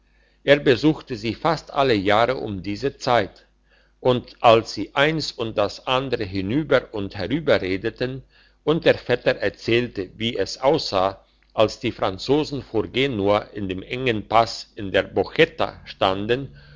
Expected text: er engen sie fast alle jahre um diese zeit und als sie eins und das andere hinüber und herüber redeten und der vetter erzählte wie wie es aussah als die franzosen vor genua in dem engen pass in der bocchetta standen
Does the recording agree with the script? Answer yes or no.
no